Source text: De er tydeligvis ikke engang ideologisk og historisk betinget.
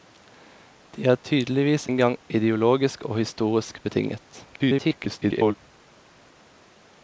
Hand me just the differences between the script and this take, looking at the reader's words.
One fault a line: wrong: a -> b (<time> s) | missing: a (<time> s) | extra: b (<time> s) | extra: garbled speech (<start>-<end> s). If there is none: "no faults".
missing: ikke (1.9 s)
extra: garbled speech (4.5-5.5 s)